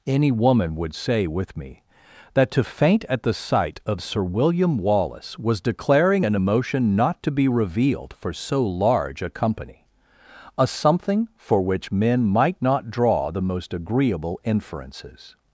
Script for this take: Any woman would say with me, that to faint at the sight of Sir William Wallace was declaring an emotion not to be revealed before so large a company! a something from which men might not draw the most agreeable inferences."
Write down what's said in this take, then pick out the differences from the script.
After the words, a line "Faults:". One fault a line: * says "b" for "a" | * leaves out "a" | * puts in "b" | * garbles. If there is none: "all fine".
Any woman would say with me, that to faint at the sight of Sir William Wallace was declaring an emotion not to be revealed for so large a company! a something for which men might not draw the most agreeable inferences."
Faults:
* says "for" for "before"
* says "for" for "from"